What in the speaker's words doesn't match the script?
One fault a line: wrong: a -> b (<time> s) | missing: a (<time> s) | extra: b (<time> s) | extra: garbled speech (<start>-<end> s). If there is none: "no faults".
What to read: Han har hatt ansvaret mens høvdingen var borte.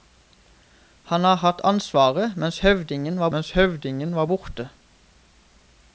extra: mens høvdingen var (3.3 s)